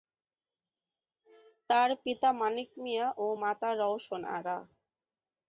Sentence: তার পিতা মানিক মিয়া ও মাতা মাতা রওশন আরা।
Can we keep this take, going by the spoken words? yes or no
no